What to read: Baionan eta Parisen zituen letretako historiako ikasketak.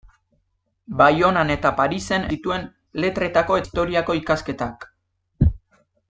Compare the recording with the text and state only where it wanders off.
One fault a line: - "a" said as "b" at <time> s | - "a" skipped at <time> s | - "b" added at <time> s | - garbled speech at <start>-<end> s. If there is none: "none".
none